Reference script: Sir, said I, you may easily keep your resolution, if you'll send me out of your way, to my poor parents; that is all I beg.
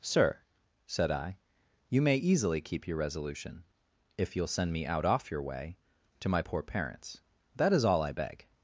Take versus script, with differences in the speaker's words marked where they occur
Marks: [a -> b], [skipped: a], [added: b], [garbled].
Sir, said I, you may easily keep your resolution, if you'll send me out [of -> off] your way, to my poor parents; that is all I beg.